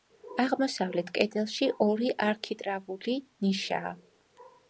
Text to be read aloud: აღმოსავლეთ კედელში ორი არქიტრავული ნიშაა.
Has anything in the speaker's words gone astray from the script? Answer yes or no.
no